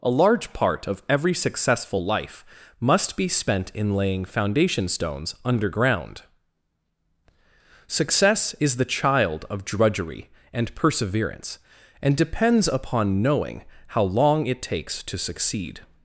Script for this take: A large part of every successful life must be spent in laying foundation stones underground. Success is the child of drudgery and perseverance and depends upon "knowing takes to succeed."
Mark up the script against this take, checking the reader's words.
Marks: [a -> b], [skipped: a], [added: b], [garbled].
A large part of every successful life must be spent in laying foundation stones underground. Success is the child of drudgery and perseverance and depends upon "knowing [added: how long it] takes to succeed."